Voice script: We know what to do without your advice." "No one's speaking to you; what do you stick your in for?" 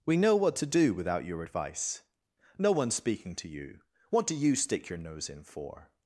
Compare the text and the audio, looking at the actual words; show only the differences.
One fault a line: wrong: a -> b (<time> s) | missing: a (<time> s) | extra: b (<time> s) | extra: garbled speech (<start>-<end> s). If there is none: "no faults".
extra: nose (5.0 s)